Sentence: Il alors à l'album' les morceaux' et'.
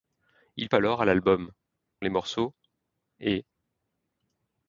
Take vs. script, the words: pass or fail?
pass